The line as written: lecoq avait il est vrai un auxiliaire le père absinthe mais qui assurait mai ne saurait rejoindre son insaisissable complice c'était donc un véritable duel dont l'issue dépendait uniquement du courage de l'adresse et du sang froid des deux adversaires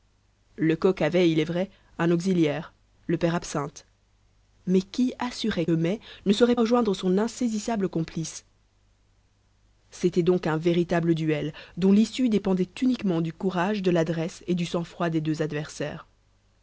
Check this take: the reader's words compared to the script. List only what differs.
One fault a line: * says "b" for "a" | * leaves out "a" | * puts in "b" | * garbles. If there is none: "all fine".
all fine